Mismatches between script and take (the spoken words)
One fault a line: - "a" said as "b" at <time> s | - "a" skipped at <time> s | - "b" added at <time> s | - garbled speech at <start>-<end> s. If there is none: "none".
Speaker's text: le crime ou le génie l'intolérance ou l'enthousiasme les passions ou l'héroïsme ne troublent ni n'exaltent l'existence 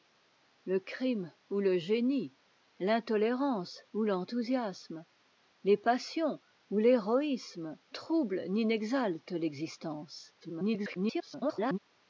- "ne" skipped at 7.8 s
- garbled speech at 10.4-11.8 s